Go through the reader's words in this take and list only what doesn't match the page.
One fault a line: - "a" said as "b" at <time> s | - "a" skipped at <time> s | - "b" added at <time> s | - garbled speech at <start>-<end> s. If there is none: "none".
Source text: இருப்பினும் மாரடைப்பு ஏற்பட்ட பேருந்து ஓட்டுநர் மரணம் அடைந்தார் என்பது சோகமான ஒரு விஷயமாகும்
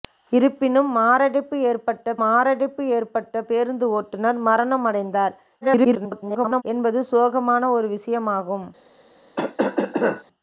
- "மாரடைப்பு ஏற்பட்ட" added at 2.2 s
- garbled speech at 5.6-6.6 s